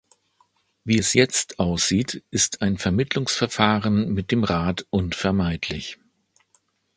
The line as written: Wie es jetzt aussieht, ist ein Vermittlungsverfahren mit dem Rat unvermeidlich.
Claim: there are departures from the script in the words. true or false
false